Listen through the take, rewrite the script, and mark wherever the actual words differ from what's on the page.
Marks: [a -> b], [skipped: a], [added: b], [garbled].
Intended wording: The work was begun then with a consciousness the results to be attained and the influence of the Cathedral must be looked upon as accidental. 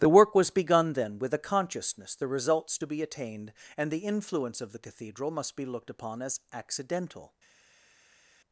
The work was begun then with a consciousness the results to be attained and the influence of the Cathedral must be looked upon as accidental.